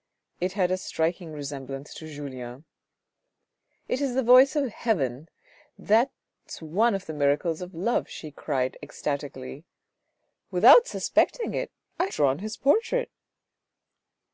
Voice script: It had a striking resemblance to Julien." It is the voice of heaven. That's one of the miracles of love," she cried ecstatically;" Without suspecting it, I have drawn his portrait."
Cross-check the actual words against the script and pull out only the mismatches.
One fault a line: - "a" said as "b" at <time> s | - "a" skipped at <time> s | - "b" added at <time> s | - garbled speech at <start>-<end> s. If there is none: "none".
- "have" skipped at 12.1 s